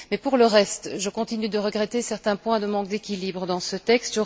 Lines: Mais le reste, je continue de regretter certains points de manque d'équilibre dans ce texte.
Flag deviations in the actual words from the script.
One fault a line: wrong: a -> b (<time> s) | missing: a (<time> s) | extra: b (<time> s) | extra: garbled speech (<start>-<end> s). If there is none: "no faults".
extra: pour (0.2 s)